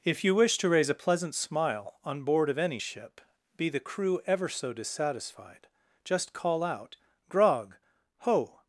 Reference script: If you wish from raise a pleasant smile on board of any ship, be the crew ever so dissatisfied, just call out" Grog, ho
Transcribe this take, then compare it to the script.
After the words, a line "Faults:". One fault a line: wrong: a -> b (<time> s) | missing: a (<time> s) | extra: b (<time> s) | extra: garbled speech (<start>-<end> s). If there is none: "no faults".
If you wish to raise a pleasant smile on board of any ship, be the crew ever so dissatisfied, just call out" Grog, ho
Faults:
wrong: from -> to (0.6 s)